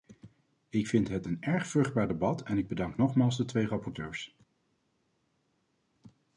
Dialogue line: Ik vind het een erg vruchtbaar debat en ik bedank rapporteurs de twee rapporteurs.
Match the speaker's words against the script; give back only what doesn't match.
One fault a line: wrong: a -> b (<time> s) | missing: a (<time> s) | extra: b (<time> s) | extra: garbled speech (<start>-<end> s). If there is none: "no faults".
wrong: rapporteurs -> nogmaals (3.0 s)